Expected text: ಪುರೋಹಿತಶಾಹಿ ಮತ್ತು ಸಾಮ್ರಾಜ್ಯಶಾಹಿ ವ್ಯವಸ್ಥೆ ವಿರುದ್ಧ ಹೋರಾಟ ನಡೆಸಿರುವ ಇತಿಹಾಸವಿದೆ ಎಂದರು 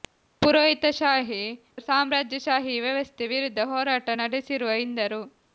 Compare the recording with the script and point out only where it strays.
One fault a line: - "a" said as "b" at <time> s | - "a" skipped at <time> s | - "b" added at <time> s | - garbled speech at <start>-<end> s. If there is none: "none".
- "ಮತ್ತು" skipped at 1.4 s
- "ಇತಿಹಾಸವಿದೆ" skipped at 4.8 s